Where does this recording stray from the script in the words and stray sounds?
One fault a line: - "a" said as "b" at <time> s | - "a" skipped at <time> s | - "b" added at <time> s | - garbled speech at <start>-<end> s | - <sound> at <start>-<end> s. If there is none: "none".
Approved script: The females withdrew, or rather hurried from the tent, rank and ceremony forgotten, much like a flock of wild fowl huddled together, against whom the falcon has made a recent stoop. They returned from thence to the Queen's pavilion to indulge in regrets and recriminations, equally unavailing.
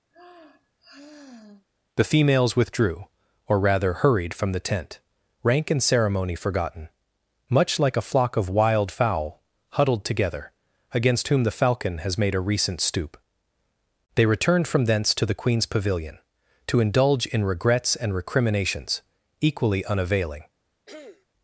- sigh at 0.1-1.6 s
- throat clearing at 20.9-21.3 s